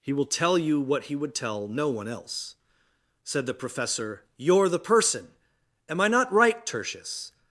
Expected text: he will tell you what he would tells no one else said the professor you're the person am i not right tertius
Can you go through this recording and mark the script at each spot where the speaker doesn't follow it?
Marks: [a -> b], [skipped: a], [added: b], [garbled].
he will tell you what he would [tells -> tell] no one else said the professor you're the person am i not right tertius